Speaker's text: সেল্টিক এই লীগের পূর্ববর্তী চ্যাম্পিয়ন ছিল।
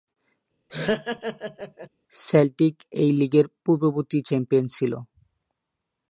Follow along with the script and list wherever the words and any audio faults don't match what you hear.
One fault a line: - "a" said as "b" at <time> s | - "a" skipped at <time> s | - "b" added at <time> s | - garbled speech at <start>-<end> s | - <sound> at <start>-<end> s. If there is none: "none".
- laugh at 0.7-1.9 s